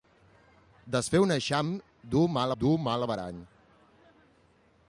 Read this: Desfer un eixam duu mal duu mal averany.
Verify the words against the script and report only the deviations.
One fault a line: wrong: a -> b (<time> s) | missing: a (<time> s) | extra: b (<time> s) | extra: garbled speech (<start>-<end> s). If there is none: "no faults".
no faults